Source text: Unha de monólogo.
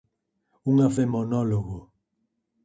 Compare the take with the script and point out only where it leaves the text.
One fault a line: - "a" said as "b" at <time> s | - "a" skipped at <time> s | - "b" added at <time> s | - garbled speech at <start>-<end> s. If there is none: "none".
none